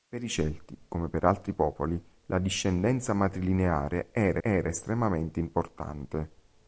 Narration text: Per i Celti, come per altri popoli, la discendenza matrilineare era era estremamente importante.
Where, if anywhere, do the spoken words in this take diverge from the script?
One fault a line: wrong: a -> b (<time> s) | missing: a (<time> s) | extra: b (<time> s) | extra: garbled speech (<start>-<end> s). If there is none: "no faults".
no faults